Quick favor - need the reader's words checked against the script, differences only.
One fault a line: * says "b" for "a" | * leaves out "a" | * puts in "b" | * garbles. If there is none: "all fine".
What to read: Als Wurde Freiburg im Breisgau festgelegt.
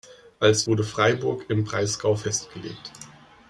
all fine